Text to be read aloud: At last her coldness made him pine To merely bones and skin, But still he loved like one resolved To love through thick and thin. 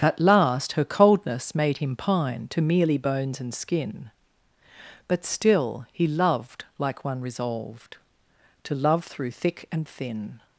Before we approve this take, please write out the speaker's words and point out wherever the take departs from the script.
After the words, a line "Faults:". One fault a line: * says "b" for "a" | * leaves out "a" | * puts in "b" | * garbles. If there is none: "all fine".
At last her coldness made him pine To merely bones and skin, But still he loved like one resolved To love through thick and thin.
Faults:
all fine